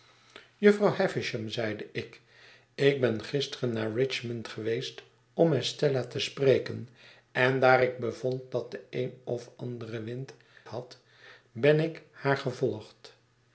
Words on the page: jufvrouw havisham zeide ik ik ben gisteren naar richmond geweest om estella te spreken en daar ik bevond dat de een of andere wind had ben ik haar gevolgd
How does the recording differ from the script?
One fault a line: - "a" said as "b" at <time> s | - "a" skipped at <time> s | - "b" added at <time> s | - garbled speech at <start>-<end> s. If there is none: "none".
none